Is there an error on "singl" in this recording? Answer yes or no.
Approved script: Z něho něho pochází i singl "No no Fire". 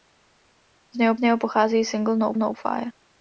no